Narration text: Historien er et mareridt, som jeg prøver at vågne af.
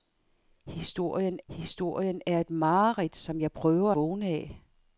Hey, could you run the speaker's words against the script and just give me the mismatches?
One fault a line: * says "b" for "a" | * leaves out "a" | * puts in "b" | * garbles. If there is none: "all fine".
* puts in "historien"
* leaves out "at"